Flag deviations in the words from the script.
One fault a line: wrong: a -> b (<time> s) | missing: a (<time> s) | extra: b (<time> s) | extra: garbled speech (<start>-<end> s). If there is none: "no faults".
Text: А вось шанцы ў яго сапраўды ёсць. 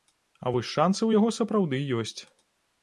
no faults